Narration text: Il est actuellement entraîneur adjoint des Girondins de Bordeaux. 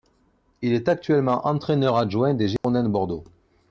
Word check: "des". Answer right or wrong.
right